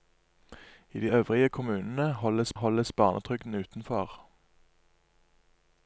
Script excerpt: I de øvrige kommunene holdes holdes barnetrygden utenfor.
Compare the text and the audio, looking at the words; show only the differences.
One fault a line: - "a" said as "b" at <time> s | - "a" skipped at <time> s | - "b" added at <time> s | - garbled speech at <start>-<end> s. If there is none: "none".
none